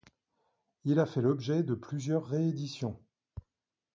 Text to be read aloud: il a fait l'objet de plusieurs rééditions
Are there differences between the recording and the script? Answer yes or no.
no